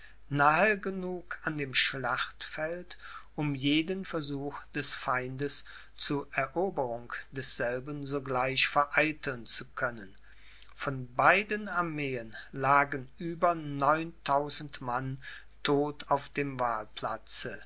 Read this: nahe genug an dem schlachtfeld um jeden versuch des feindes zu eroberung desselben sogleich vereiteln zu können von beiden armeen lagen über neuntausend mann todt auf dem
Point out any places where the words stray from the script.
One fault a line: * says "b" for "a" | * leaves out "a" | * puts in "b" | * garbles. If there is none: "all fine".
all fine